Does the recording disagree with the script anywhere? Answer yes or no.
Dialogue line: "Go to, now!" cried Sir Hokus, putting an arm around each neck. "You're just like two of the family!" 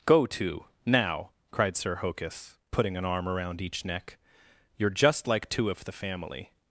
no